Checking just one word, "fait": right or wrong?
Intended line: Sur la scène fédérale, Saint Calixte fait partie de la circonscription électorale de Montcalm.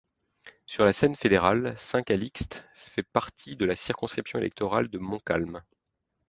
right